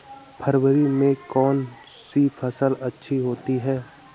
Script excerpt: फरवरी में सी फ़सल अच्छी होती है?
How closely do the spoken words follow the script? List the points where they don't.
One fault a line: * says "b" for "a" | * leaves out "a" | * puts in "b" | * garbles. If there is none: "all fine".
* puts in "कौन"